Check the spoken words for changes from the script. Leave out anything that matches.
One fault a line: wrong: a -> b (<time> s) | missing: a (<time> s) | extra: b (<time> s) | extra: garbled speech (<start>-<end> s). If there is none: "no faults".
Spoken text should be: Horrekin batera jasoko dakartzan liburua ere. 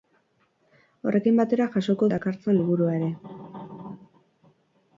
no faults